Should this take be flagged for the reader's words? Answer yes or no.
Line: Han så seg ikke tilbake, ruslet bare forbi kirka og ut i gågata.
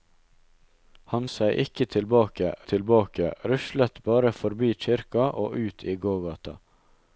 yes